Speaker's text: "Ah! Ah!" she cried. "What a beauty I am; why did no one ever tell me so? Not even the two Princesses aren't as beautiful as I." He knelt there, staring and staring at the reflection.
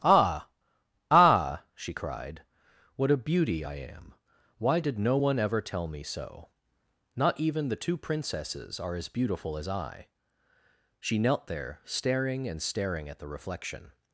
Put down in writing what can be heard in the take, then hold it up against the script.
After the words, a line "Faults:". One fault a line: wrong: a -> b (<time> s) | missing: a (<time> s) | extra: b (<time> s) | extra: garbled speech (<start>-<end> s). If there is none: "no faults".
"Ah! Ah!" she cried. "What a beauty I am; why did no one ever tell me so? Not even the two Princesses are as beautiful as I." She knelt there, staring and staring at the reflection.
Faults:
wrong: aren't -> are (8.8 s)
wrong: He -> She (11.0 s)